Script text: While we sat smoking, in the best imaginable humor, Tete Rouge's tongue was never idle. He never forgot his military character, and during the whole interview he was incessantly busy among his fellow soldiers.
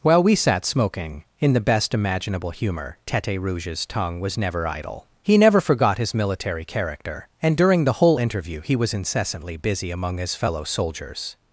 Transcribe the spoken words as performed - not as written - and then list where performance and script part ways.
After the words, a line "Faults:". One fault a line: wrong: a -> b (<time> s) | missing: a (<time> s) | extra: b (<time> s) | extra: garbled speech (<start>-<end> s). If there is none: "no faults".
While we sat smoking, in the best imaginable humor, Tete Rouge's tongue was never idle. He never forgot his military character, and during the whole interview he was incessantly busy among his fellow soldiers.
Faults:
no faults